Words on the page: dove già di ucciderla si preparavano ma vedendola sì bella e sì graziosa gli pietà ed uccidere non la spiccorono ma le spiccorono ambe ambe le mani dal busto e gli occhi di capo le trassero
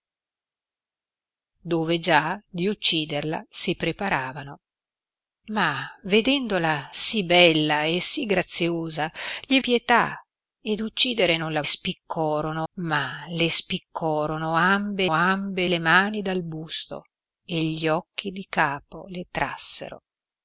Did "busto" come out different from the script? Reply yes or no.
no